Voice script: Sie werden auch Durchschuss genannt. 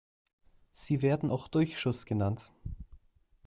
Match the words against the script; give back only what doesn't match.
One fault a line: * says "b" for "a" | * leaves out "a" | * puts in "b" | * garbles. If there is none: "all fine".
all fine